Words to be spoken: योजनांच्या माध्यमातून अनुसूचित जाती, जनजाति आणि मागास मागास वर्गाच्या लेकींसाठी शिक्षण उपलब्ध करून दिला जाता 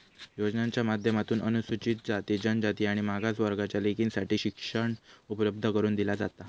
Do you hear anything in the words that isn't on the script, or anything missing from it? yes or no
yes